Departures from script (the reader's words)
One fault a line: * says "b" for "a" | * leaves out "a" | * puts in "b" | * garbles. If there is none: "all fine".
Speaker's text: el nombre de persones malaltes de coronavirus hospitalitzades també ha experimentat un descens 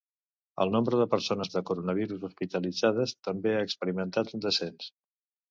* leaves out "malaltes"